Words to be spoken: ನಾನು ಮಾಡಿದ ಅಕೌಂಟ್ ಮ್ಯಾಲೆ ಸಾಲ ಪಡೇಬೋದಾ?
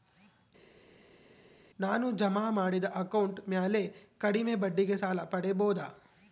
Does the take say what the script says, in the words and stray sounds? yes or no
no